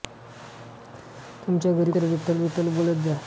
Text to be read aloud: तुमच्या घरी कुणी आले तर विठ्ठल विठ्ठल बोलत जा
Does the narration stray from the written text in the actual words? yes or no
yes